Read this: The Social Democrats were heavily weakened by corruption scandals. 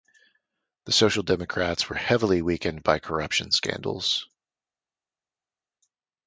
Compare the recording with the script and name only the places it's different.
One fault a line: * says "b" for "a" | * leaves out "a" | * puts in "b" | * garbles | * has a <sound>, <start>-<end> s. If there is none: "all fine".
all fine